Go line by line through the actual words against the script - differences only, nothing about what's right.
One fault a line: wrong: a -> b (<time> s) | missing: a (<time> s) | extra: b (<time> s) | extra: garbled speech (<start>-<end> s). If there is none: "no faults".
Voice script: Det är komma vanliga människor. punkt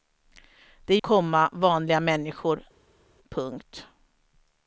no faults